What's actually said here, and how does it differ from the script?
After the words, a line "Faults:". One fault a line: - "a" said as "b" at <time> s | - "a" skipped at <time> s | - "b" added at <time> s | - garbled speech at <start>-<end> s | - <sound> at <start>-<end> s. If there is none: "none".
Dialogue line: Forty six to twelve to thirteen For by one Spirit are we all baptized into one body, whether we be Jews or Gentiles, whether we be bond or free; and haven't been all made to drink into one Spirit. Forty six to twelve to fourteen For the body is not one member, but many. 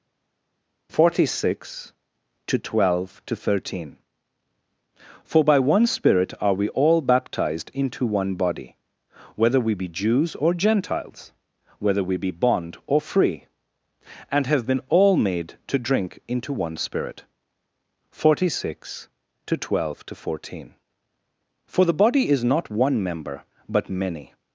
Forty six to twelve to thirteen For by one Spirit are we all baptized into one body, whether we be Jews or Gentiles, whether we be bond or free; and have been all made to drink into one Spirit. Forty six to twelve to fourteen For the body is not one member, but many.
Faults:
- "haven't" said as "have" at 14.5 s